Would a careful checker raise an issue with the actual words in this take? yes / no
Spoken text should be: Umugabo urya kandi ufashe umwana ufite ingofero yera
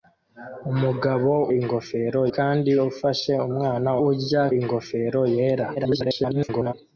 yes